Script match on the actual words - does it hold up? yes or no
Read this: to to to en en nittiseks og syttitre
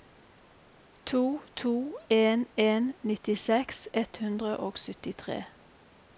no